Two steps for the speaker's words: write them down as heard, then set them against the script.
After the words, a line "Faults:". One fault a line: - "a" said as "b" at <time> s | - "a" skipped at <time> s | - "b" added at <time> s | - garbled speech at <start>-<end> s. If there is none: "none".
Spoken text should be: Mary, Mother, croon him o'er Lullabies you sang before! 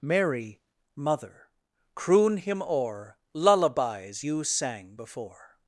Mary, Mother, croon him o'er Lullabies you sang before!
Faults:
none